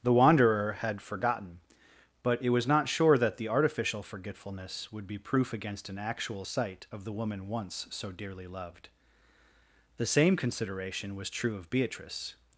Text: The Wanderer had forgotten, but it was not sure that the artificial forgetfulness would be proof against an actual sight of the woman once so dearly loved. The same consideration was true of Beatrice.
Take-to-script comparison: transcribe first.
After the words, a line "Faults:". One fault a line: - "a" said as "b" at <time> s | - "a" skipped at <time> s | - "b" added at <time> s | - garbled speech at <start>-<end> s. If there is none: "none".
The Wanderer had forgotten, but it was not sure that the artificial forgetfulness would be proof against an actual sight of the woman once so dearly loved. The same consideration was true of Beatrice.
Faults:
none